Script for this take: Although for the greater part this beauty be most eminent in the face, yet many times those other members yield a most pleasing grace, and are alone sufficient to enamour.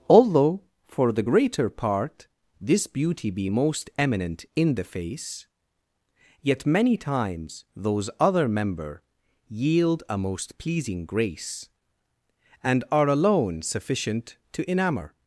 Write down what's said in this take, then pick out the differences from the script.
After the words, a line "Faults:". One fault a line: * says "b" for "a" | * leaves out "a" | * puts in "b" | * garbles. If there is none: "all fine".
Although for the greater part this beauty be most eminent in the face, yet many times those other member yield a most pleasing grace, and are alone sufficient to enamour.
Faults:
* says "member" for "members"